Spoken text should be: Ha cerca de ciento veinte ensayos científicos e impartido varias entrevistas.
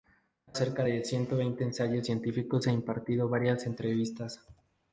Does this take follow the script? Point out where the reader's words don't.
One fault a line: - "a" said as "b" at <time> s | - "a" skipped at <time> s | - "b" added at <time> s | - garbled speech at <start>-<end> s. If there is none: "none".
none